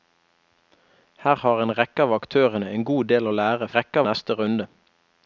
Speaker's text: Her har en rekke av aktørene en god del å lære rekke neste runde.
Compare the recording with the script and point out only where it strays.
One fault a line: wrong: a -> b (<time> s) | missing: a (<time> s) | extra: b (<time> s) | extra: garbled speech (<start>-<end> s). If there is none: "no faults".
no faults